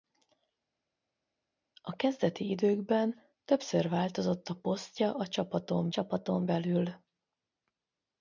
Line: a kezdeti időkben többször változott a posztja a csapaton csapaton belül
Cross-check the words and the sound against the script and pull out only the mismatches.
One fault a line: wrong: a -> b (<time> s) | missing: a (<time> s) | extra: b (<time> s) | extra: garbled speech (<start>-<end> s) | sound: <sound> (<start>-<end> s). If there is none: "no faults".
no faults